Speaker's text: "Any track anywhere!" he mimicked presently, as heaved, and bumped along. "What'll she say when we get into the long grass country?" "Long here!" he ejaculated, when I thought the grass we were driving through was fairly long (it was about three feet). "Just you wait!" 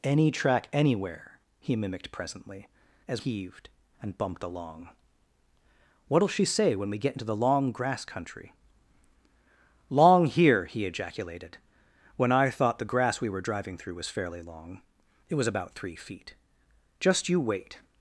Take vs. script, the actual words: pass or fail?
pass